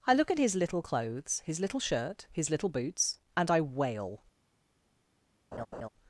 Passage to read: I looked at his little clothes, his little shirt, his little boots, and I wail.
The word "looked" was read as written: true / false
false